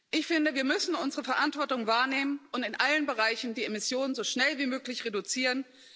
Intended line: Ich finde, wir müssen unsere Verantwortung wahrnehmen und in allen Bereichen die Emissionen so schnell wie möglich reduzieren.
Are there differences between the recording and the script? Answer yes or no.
no